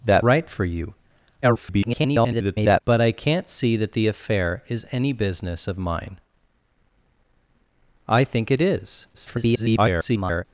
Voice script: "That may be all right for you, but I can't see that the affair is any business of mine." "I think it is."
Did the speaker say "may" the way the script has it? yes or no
no